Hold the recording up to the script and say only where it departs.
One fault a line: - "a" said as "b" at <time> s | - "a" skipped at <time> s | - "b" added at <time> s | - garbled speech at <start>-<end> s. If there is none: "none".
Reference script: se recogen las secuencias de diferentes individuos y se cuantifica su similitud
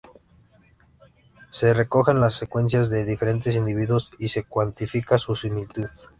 none